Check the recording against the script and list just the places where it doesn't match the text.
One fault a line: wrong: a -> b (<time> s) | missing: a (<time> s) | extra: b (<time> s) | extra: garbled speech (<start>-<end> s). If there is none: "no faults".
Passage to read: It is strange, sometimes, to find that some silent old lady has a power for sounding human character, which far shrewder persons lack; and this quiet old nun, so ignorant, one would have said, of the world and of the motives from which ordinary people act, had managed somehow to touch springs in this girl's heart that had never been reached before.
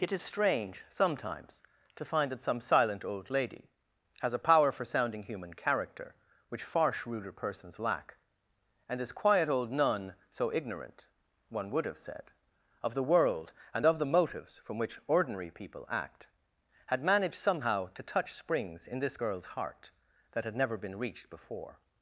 no faults